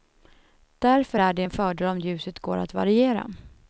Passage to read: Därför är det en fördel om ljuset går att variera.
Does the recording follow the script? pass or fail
pass